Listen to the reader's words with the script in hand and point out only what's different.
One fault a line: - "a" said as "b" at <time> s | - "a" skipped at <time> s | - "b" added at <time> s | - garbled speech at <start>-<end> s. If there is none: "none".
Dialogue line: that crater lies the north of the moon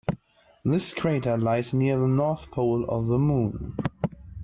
- "that" said as "this" at 0.7 s
- "near" added at 1.8 s
- "pole" added at 2.5 s